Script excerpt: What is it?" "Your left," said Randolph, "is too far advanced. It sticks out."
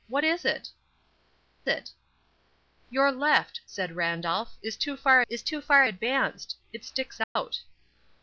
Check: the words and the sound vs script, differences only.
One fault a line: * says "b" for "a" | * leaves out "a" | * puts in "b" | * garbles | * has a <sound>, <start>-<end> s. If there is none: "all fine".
* puts in "it"
* puts in "is too far"
* has a dropout, 7.2-7.4 s